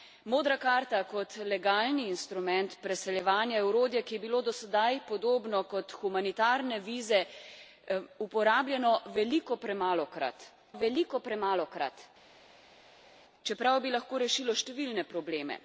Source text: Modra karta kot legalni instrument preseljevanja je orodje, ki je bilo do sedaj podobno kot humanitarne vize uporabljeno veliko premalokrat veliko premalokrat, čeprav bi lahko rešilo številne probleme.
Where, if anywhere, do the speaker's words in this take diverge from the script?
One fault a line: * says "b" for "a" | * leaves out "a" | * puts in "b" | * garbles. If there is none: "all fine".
all fine